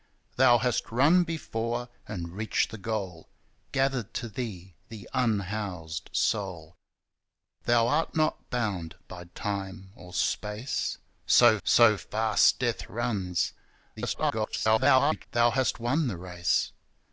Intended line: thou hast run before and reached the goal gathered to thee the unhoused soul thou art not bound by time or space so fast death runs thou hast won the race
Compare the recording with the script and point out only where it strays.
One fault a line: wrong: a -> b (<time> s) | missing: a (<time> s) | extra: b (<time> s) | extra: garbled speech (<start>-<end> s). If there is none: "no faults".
extra: so (11.6 s)
extra: garbled speech (14.0-15.2 s)